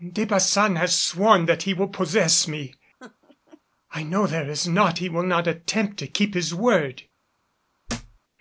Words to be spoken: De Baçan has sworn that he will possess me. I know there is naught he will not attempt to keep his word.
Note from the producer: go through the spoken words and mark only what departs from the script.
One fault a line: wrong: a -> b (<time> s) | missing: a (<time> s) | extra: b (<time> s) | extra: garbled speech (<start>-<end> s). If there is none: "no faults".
no faults